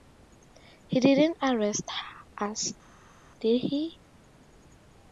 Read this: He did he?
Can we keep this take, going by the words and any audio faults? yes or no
no